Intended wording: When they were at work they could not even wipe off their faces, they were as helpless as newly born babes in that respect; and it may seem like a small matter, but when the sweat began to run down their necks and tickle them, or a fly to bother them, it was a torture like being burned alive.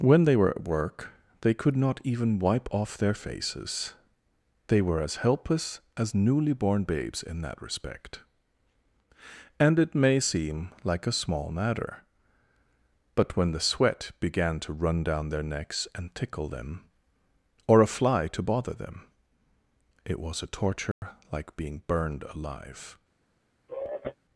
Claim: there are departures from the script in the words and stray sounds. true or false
true